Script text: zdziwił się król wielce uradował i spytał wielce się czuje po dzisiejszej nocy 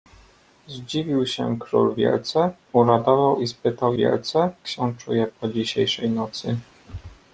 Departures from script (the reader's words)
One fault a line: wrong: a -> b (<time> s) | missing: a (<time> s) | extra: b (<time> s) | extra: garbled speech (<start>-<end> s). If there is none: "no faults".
no faults